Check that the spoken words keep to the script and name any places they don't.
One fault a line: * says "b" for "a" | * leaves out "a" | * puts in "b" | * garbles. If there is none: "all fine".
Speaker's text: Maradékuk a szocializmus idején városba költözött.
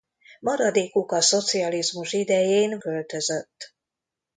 * leaves out "városba"